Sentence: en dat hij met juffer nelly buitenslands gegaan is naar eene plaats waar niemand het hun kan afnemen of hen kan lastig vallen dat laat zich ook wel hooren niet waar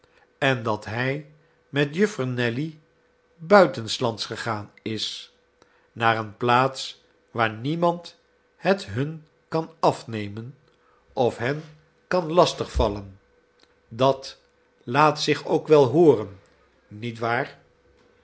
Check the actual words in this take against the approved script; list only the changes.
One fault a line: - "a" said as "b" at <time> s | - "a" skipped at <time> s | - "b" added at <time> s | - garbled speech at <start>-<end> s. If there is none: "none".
none